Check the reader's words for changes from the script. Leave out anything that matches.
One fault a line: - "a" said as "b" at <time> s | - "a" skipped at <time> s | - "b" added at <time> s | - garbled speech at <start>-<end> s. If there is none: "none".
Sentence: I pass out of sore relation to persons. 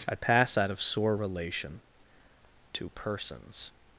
none